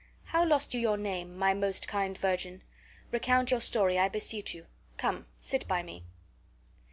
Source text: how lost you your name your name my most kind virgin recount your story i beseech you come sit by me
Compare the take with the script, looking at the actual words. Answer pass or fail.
fail